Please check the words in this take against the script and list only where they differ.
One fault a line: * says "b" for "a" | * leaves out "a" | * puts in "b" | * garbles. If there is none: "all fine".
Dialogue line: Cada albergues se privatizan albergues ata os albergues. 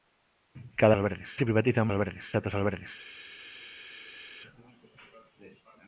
all fine